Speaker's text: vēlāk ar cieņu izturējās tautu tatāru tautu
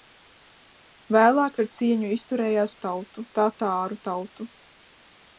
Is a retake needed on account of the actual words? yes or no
no